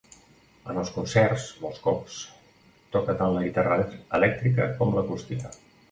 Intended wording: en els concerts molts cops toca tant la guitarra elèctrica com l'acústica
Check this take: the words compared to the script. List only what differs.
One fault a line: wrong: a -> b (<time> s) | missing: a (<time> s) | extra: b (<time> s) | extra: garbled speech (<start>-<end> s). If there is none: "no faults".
no faults